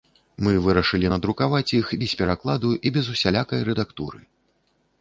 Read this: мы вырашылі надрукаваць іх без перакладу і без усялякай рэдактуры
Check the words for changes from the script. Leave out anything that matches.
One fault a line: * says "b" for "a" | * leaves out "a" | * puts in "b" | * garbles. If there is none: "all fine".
all fine